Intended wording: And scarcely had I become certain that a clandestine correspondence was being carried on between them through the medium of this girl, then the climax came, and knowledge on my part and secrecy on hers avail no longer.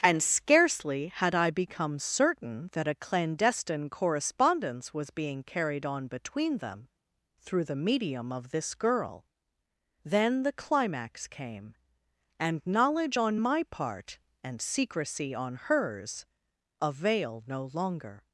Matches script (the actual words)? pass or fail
pass